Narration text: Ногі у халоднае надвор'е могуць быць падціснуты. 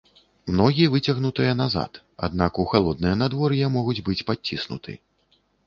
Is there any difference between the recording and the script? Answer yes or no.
yes